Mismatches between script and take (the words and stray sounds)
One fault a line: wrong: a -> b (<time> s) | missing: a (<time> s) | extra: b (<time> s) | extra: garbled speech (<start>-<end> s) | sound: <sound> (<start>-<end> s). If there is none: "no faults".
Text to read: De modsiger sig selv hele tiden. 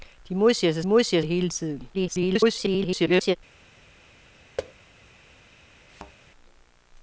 wrong: selv -> modsiger (0.8 s)
extra: garbled speech (1.9-3.4 s)
sound: thud (4.6-4.7 s)
sound: thud (5.9-6.1 s)